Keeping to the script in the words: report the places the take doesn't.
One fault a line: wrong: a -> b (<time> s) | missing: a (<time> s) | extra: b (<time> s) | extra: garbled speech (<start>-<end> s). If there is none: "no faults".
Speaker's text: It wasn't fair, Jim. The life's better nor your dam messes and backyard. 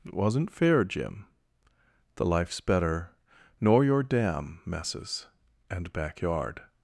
no faults